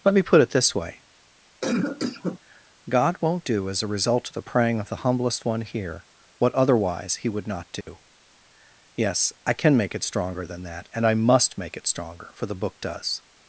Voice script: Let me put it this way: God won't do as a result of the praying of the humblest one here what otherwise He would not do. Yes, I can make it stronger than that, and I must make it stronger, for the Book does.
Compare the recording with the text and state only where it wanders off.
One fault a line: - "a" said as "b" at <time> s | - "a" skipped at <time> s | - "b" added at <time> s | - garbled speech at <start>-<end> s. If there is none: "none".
none